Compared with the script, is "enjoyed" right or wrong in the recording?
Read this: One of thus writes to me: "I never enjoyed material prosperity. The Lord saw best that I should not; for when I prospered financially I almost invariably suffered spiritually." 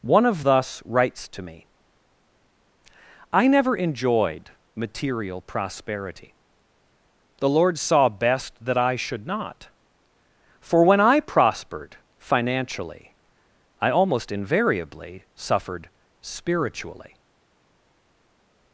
right